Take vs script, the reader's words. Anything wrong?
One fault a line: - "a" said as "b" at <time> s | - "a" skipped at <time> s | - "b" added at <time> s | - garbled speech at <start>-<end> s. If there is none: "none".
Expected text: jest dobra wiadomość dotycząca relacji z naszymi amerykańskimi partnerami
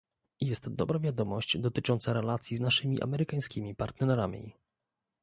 - "z" skipped at 2.6 s